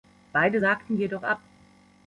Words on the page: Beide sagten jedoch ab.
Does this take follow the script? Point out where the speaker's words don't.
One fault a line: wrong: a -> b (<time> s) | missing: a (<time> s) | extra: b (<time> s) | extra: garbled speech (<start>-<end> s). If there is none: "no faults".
no faults